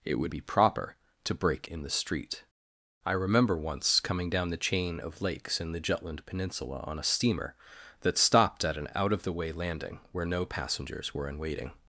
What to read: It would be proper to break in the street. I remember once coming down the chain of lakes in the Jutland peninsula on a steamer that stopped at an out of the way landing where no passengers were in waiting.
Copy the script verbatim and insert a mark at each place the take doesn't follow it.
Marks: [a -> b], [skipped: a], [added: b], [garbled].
It would be proper to break in the street. I remember once coming down the chain of lakes in the Jutland peninsula on a steamer that stopped at an out of the way landing where no passengers were in waiting.